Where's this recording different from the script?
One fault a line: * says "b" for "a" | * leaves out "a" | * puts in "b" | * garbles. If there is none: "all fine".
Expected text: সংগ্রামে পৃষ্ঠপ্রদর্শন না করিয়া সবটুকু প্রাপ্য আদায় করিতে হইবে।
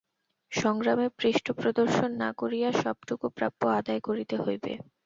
all fine